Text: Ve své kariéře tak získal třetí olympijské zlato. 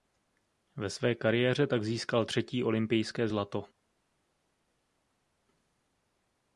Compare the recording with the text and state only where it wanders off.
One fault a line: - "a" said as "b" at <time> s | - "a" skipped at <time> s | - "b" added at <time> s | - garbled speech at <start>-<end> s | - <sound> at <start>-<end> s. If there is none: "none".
none